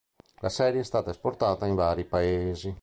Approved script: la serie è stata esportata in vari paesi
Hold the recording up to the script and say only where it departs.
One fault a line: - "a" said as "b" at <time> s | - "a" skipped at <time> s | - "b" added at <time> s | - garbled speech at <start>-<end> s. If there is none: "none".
none